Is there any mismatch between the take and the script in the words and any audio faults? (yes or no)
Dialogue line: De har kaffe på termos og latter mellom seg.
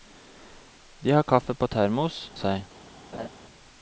yes